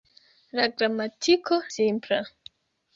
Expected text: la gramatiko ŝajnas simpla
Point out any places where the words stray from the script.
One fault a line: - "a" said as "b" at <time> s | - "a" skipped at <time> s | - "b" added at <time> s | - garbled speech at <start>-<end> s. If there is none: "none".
- "ŝajnas" skipped at 1.6 s